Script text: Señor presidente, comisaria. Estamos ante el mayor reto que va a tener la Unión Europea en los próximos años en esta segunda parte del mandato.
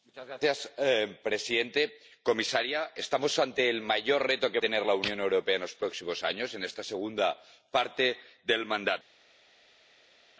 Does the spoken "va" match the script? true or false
false